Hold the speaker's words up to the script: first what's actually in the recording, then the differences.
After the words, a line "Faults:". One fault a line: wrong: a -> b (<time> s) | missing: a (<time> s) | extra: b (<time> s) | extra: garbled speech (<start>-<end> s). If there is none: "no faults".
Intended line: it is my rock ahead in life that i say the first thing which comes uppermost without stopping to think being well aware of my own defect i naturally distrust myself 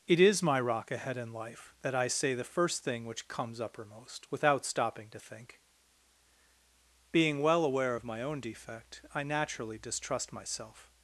it is my rock ahead in life that i say the first thing which comes uppermost without stopping to think being well aware of my own defect i naturally distrust myself
Faults:
no faults